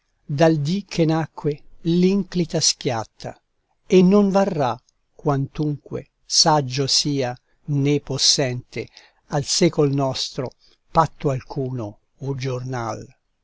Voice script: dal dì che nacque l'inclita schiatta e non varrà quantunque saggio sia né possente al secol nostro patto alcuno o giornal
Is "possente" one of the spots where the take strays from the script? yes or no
no